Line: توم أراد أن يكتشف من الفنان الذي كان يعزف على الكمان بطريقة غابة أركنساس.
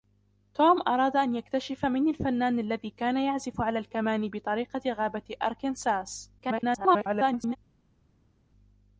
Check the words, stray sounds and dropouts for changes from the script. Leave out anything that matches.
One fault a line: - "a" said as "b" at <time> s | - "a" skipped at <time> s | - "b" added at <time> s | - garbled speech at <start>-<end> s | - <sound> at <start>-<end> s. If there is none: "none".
- garbled speech at 6.4-7.6 s